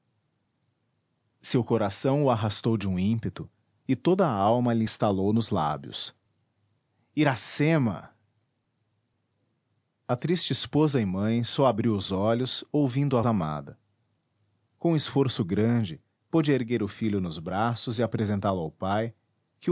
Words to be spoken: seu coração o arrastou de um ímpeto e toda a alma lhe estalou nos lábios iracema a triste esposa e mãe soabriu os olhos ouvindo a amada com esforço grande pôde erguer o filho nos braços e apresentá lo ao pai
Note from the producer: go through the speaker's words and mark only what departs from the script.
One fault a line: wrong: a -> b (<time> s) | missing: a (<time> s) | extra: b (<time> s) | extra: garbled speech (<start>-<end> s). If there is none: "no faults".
no faults